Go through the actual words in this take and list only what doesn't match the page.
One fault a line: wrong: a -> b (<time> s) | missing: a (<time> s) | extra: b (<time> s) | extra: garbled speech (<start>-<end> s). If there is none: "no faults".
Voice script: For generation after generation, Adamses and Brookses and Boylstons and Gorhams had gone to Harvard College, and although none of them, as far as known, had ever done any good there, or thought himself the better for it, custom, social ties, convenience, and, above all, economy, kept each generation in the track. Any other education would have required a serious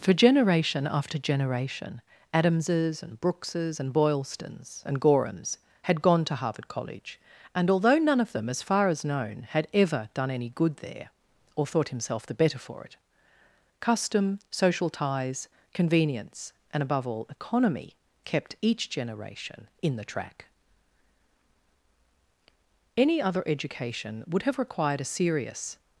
no faults